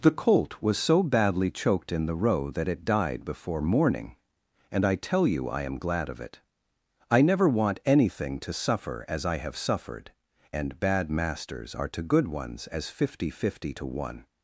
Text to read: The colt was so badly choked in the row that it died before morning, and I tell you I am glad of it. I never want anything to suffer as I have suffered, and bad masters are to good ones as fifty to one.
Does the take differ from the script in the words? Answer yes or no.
yes